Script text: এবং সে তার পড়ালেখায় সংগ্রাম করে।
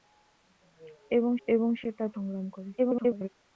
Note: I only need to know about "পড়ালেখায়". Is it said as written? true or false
false